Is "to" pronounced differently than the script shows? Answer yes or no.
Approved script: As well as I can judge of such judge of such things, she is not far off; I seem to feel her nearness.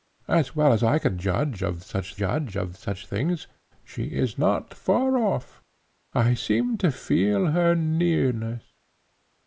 no